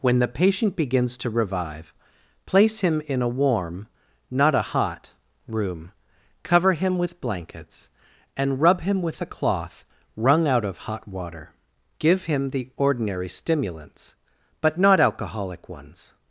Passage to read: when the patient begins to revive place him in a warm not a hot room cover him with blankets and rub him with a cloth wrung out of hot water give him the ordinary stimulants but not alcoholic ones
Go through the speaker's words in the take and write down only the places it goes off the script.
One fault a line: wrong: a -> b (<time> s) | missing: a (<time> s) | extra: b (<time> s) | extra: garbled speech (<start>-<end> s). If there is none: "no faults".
no faults